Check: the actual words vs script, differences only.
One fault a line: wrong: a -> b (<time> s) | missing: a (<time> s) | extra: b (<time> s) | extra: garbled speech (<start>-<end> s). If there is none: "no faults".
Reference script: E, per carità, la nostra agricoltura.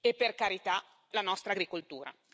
no faults